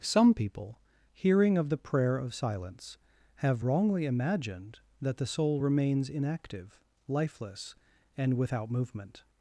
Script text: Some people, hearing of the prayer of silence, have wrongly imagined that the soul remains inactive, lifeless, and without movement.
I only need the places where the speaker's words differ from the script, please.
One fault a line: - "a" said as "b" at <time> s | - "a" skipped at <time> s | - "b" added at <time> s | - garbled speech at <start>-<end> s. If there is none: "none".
none